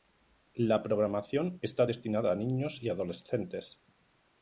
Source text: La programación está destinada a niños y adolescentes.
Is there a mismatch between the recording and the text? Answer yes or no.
no